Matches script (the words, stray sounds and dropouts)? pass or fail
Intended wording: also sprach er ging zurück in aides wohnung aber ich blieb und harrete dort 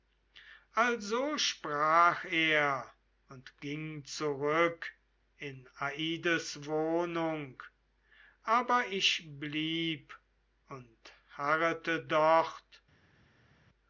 fail